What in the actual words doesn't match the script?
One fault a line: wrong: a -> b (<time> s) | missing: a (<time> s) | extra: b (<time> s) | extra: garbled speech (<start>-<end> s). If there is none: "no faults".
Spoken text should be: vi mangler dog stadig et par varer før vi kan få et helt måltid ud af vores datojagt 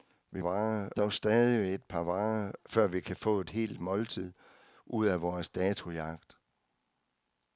wrong: mangler -> varer (0.4 s)